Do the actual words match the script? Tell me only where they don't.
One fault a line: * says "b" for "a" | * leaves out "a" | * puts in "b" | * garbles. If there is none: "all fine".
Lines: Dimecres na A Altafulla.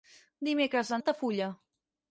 all fine